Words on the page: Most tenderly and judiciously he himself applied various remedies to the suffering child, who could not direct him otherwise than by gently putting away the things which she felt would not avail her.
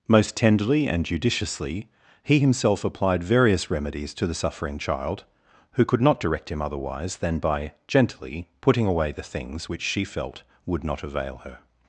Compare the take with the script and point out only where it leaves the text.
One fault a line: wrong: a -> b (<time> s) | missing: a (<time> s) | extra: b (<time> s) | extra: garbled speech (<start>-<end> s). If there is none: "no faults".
no faults